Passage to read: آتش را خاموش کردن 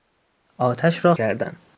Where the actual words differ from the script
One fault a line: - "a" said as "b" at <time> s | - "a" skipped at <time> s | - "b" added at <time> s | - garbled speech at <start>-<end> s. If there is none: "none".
- "خاموش" skipped at 1.1 s